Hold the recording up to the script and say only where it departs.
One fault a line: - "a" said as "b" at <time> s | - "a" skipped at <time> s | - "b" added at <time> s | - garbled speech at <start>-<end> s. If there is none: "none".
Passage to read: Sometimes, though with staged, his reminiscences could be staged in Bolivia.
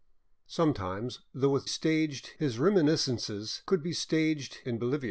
none